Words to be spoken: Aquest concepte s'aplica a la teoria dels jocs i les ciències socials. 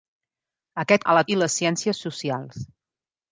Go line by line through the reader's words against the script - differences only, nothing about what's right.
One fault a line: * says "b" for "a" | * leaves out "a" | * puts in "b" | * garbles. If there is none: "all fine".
* leaves out "concepte s'aplica"
* leaves out "teoria dels jocs"